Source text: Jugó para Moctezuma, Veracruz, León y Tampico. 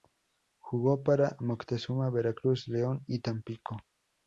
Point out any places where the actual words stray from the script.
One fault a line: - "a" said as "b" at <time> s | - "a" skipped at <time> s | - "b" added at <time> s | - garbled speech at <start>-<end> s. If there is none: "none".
none